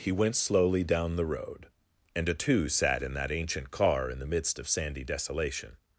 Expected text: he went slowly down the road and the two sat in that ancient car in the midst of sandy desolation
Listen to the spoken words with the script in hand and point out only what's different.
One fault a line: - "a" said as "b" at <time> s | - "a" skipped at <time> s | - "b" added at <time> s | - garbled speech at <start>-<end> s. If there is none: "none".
- "the" said as "a" at 2.3 s